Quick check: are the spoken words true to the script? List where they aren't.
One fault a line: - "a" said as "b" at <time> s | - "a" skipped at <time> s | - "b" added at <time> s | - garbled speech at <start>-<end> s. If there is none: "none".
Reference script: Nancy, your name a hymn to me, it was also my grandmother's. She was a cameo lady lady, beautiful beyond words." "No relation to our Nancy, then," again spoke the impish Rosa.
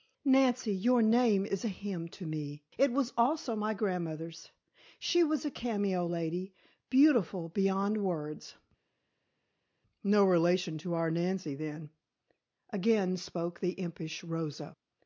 - "is" added at 1.4 s
- "lady" skipped at 6.5 s